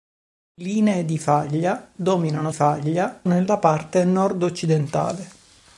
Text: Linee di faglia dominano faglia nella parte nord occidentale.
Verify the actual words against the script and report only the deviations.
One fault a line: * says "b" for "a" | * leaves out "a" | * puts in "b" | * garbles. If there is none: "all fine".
all fine